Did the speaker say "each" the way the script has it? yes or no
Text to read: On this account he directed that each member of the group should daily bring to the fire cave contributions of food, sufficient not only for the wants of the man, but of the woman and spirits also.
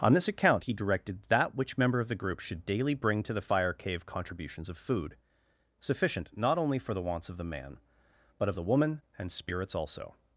no